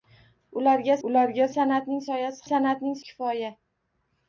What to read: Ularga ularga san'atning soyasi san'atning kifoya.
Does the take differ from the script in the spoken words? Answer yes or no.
no